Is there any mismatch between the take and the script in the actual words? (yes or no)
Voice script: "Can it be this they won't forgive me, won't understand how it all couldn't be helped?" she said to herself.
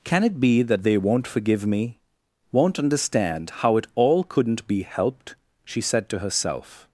yes